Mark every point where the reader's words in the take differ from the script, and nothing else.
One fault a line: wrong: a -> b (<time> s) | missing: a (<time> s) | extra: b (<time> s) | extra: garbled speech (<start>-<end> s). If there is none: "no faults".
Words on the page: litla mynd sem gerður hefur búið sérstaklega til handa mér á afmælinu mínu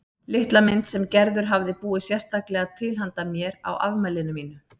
wrong: hefur -> hafði (1.5 s)